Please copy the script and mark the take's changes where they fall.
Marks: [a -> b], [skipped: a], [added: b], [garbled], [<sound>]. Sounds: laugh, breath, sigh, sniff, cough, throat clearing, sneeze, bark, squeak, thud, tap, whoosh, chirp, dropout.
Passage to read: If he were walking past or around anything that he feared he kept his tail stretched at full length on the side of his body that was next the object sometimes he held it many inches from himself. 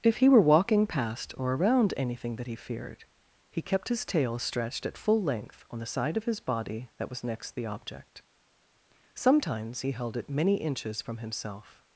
If he were walking past or around anything that he feared he kept his tail stretched at full length on the side of his body that was next the object sometimes he held it many inches from himself.